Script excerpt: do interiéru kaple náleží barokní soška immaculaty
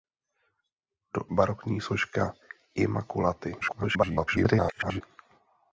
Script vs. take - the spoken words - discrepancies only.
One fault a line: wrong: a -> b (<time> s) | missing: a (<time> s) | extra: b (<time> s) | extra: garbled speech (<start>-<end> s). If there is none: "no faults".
missing: interiéru kaple náleží (1.2 s)
extra: garbled speech (3.6-5.0 s)